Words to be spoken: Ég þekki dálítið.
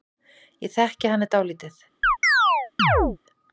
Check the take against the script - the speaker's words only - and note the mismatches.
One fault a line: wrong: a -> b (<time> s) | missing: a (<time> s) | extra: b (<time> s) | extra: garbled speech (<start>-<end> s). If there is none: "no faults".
extra: hana (1.1 s)